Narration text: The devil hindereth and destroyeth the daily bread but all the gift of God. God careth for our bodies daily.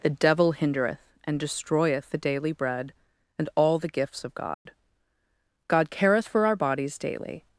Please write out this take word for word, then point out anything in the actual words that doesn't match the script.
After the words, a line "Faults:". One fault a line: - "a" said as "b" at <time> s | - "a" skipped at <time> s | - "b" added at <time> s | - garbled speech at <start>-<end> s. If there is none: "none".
The devil hindereth and destroyeth the daily bread and all the gifts of God. God careth for our bodies daily.
Faults:
- "but" said as "and" at 3.4 s
- "gift" said as "gifts" at 3.9 s